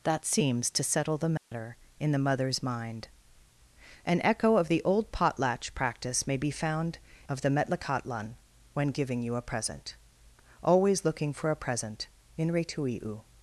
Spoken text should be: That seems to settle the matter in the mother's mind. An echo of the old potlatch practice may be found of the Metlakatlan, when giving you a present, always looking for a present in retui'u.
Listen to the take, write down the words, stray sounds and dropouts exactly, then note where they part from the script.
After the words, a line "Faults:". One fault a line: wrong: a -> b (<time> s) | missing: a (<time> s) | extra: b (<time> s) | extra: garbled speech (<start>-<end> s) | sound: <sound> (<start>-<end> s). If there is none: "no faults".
That seems to settle the matter in the mother's mind. An echo of the old potlatch practice may be found of the Metlakatlan, when giving you a present, always looking for a present in retui'u.
Faults:
sound: dropout (1.4-1.5 s)